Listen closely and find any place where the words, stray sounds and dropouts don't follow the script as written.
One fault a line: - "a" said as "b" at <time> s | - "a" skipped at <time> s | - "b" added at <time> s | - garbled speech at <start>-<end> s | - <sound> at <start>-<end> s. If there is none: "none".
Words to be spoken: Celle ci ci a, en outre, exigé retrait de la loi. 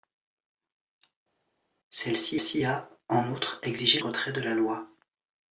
none